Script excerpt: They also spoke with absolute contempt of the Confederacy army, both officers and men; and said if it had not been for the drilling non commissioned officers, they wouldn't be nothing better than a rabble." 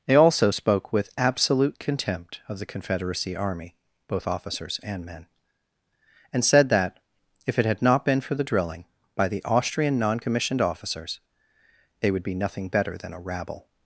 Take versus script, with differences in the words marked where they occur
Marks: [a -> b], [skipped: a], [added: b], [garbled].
They also spoke with absolute contempt of the Confederacy army, both officers and men; and said [added: that] if it had not been for the drilling [added: by the Austrian] non commissioned officers, they [wouldn't -> would] be nothing better than a rabble."